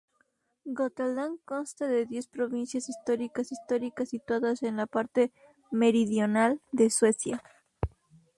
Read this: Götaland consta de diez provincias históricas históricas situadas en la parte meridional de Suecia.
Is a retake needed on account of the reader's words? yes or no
no